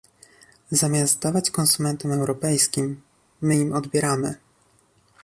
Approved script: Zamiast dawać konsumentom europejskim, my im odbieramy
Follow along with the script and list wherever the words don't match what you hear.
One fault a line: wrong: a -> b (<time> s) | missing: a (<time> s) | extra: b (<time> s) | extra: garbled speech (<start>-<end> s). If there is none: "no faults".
no faults